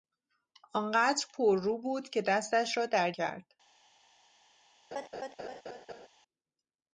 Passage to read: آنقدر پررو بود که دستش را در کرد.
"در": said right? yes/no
yes